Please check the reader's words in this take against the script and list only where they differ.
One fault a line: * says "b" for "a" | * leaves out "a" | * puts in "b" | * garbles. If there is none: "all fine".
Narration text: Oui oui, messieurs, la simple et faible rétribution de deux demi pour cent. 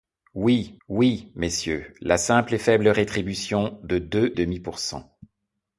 all fine